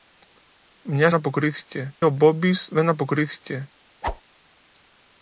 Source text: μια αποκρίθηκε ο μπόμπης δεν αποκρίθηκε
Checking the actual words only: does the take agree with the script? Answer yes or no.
yes